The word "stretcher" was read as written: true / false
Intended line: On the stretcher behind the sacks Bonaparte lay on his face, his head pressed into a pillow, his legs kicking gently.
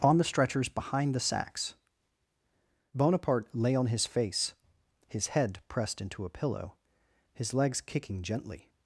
false